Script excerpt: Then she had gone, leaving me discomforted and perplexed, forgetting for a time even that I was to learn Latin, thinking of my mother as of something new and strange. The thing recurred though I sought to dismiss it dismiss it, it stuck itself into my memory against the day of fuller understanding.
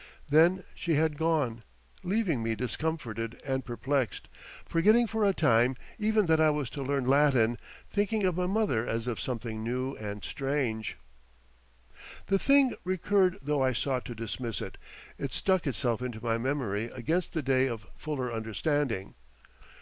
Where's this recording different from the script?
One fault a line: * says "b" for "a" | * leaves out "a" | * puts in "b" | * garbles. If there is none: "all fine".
* leaves out "dismiss it"